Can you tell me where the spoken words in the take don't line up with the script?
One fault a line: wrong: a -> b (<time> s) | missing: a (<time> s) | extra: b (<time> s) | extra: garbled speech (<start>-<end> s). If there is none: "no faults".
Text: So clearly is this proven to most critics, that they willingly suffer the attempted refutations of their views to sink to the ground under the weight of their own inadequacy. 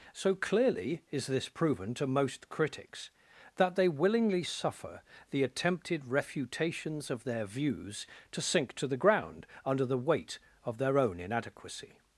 no faults